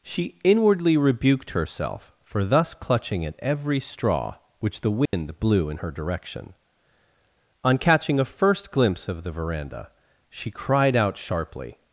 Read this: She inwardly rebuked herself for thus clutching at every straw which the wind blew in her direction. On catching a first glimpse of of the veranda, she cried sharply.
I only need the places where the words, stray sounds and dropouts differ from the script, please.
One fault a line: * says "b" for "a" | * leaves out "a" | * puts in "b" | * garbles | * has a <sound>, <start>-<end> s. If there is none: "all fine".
* has a dropout, 5.1-5.1 s
* leaves out "of"
* puts in "out"